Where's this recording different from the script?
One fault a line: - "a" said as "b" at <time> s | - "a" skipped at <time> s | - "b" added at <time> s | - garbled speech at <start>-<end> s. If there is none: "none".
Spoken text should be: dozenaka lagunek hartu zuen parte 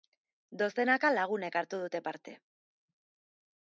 - "zuen" said as "dute" at 1.8 s